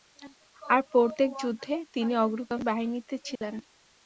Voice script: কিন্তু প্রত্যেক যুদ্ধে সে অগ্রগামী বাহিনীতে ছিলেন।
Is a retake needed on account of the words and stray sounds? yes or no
yes